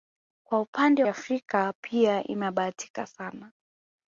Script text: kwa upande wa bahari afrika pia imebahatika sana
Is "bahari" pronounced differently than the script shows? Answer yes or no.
yes